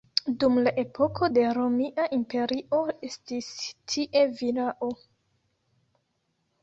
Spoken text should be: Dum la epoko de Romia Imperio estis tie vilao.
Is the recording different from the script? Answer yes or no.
no